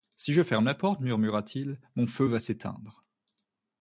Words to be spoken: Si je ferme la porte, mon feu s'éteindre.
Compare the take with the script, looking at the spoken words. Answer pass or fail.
fail